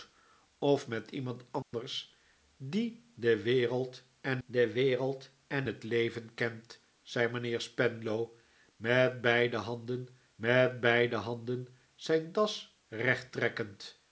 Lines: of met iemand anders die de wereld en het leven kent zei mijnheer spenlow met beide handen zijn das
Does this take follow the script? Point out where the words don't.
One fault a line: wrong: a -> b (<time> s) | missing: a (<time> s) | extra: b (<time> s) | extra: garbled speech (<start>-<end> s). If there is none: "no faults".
extra: de wereld en (4.4 s)
extra: met beide handen (10.3 s)